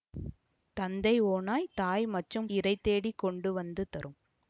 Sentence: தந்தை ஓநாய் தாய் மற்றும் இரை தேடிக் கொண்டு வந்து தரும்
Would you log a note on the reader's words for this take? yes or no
no